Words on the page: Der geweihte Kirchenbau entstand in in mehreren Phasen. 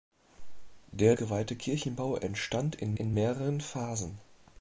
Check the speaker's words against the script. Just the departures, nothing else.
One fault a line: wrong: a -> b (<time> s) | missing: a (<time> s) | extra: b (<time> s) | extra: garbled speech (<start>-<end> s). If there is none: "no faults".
no faults